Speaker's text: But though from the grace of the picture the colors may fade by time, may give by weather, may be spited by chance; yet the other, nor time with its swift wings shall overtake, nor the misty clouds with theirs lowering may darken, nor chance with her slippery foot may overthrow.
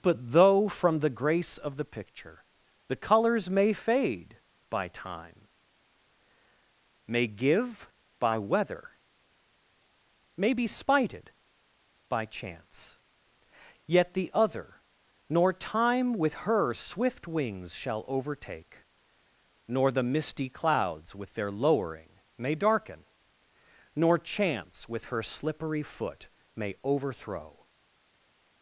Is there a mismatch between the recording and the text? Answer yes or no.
yes